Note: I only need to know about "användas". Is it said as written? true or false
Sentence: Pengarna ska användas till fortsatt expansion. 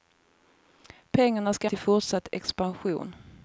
false